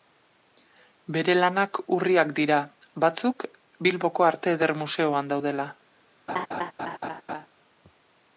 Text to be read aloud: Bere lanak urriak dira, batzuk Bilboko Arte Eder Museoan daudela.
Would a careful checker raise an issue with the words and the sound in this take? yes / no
yes